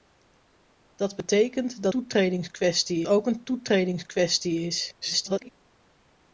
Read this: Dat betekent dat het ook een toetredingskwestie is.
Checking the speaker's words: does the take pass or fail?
fail